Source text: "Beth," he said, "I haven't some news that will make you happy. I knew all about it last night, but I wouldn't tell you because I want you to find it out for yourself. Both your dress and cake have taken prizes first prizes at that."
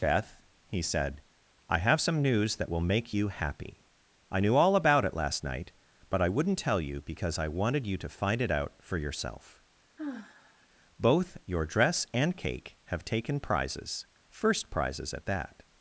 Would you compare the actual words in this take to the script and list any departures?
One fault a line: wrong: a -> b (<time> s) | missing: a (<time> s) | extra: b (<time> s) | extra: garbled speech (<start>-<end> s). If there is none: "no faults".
wrong: haven't -> have (1.8 s)
wrong: want -> wanted (7.5 s)